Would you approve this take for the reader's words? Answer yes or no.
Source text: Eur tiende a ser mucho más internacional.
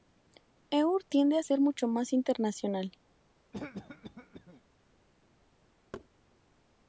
yes